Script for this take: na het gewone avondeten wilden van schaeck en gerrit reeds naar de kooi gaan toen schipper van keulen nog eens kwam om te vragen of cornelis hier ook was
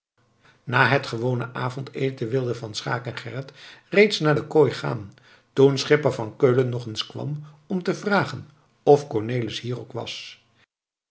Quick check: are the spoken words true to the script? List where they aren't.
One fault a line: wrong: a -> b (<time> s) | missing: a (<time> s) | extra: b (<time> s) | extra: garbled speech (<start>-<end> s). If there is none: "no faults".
no faults